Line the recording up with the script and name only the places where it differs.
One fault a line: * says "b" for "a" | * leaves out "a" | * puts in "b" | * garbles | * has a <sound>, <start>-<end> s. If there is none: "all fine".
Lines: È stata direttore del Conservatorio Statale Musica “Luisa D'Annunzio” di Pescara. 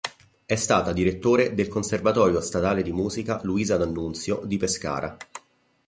* puts in "di"